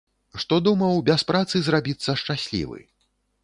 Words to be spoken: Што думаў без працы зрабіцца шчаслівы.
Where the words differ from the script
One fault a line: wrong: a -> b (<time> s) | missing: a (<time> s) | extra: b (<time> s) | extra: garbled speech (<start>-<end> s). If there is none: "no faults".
no faults